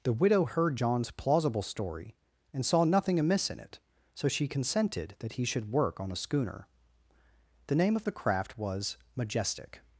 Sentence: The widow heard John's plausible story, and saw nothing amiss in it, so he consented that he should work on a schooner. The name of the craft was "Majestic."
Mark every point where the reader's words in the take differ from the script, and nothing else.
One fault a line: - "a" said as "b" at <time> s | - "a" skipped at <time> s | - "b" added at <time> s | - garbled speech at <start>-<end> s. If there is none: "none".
- "he" said as "she" at 4.3 s